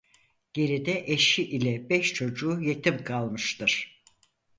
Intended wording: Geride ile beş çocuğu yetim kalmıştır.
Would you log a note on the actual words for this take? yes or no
yes